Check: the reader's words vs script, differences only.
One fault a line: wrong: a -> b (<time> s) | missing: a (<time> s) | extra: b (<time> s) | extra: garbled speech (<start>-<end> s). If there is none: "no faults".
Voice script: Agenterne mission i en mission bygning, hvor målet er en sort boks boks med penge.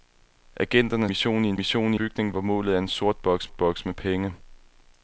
no faults